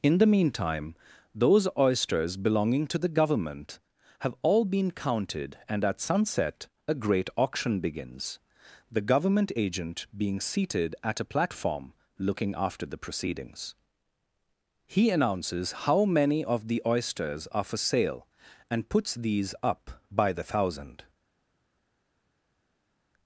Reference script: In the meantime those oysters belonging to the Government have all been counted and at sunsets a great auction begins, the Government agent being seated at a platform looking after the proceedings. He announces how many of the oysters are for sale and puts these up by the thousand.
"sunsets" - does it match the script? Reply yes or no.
no